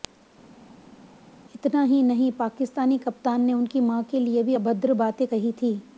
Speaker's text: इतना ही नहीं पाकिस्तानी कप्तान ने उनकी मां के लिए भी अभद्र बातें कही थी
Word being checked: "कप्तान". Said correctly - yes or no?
yes